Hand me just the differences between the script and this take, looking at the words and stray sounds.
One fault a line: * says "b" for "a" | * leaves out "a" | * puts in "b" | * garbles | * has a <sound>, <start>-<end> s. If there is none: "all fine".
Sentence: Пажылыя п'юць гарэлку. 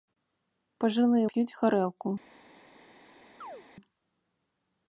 * has a chirp, 3.4-3.6 s